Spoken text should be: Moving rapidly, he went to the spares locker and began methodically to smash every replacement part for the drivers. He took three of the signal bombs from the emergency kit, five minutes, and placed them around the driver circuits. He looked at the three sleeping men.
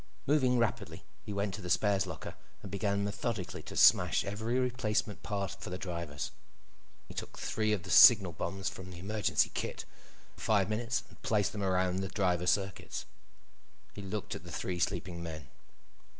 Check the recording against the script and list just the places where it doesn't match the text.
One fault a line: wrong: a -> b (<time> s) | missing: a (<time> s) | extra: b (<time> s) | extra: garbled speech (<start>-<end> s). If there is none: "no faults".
no faults